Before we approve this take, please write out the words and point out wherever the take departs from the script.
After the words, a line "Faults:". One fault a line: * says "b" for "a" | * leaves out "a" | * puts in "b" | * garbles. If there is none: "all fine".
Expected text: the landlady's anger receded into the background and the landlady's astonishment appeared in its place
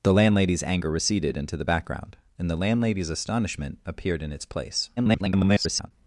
the landlady's anger receded into the background and the landlady's astonishment appeared in its place [garbled]
Faults:
* garbles